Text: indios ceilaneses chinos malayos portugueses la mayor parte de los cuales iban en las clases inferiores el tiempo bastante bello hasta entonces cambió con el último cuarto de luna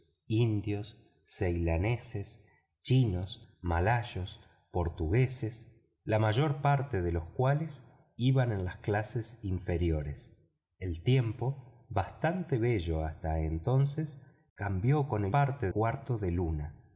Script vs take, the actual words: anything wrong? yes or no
yes